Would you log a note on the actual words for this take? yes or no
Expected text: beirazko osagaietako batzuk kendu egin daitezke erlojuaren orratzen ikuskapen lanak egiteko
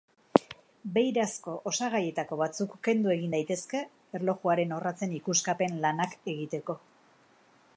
no